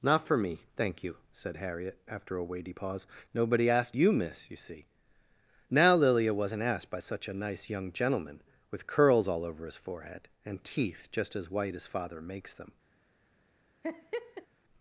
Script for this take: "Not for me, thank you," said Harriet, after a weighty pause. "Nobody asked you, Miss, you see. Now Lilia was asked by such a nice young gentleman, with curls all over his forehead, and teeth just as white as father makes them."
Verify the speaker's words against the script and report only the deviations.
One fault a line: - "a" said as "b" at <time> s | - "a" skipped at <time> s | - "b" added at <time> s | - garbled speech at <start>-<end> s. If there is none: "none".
- "was" said as "wasn't" at 6.3 s